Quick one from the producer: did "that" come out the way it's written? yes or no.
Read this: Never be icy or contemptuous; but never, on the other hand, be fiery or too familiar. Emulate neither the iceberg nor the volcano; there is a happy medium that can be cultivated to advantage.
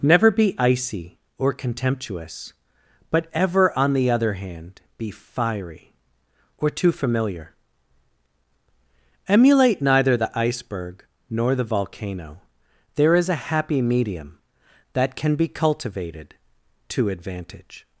yes